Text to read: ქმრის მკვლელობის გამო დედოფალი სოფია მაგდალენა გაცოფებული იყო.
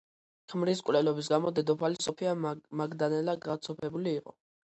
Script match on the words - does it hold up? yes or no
yes